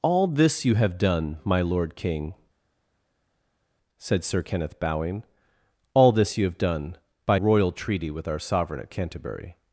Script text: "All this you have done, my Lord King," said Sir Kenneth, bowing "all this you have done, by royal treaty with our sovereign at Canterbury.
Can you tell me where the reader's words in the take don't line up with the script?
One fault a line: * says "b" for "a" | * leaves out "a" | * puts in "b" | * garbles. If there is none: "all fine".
all fine